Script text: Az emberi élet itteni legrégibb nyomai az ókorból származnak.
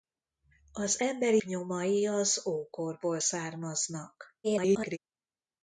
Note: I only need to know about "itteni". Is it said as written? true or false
false